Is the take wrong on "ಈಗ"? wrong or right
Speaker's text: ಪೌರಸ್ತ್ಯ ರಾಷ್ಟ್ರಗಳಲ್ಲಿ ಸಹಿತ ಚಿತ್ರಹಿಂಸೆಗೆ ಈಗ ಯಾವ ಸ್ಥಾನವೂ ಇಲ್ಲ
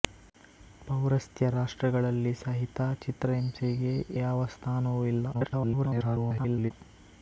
wrong